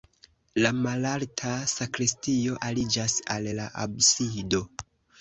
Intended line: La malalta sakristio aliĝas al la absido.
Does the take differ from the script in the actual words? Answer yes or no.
no